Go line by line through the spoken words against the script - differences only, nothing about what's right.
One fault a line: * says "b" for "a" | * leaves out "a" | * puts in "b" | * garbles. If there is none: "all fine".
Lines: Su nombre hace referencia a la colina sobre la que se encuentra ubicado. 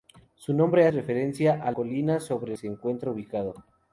* leaves out "hace"
* leaves out "la"
* leaves out "la que"